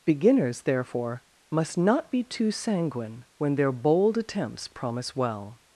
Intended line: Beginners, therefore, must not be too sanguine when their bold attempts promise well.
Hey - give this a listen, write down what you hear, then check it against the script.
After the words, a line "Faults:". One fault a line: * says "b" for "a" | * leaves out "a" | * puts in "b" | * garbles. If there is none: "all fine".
Beginners, therefore, must not be too sanguine when their bold attempts promise well.
Faults:
all fine